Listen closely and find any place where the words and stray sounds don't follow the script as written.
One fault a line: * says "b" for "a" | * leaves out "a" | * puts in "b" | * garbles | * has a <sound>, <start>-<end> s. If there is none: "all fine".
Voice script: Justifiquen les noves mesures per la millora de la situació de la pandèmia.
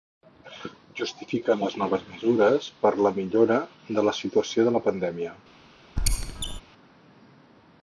* has a squeak, 6.0-6.6 s